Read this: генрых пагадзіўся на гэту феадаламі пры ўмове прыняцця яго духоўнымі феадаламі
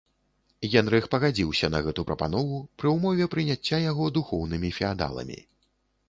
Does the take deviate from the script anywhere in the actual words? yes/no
yes